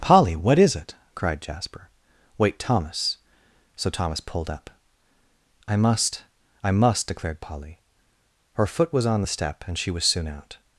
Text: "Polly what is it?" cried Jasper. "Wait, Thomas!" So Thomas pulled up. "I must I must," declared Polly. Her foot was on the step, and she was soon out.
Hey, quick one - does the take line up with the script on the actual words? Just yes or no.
yes